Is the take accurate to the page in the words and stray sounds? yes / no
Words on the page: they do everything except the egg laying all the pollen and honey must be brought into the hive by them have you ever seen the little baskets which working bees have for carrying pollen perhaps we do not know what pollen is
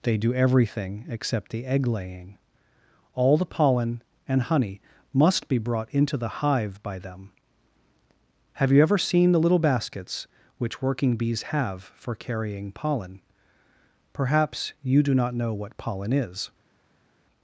no